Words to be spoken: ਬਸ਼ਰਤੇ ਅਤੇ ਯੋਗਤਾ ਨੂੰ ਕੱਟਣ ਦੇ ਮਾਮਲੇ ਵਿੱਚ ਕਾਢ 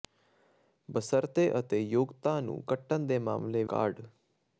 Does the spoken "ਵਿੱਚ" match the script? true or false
false